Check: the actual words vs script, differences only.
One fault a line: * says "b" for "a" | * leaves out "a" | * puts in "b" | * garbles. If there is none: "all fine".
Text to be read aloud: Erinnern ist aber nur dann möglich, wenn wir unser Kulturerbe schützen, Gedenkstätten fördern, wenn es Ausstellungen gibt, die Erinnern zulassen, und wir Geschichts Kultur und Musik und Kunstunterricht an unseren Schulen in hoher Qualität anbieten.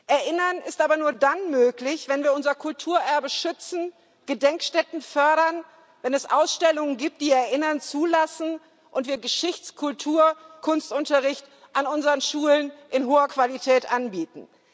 * leaves out "und Musik und"